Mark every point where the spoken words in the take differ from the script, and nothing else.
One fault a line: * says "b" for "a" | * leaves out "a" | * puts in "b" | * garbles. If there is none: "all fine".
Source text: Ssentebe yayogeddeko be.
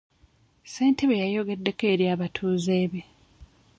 * puts in "eri abatuuze"